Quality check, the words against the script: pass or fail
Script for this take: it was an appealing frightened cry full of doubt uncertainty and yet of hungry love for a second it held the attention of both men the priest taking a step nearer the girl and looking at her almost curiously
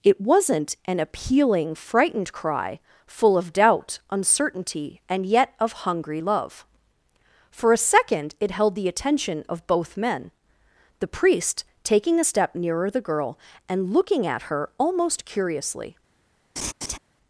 fail